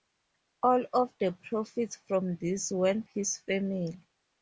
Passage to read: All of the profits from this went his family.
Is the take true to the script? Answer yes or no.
yes